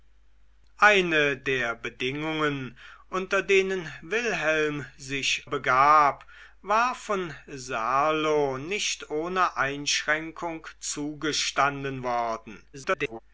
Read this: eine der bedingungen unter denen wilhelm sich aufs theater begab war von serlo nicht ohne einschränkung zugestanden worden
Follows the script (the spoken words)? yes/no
no